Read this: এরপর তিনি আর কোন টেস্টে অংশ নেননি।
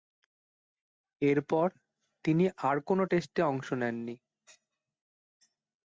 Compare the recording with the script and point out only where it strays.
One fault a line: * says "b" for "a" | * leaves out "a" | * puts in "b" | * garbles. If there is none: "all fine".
all fine